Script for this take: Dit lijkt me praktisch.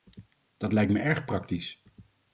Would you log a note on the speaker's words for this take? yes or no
yes